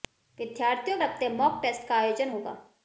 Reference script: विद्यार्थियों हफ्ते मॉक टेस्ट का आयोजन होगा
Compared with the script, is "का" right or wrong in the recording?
right